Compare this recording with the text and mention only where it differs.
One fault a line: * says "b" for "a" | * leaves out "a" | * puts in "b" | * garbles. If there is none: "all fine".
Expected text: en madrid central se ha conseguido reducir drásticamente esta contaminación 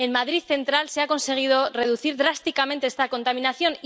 all fine